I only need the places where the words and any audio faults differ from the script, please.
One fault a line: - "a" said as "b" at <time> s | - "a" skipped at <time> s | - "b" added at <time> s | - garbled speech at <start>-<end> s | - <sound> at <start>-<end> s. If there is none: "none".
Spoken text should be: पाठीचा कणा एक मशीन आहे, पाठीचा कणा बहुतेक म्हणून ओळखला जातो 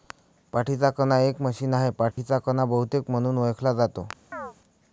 - dropout at 2.1-2.2 s
- chirp at 4.3-4.5 s